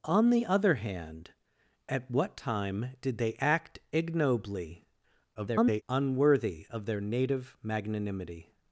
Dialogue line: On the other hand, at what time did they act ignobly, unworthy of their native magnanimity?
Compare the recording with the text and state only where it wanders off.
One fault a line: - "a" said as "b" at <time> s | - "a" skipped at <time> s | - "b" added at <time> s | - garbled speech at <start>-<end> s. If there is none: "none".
- garbled speech at 5.3-5.8 s